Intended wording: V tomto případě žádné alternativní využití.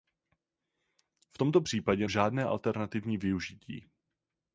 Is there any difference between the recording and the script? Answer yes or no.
no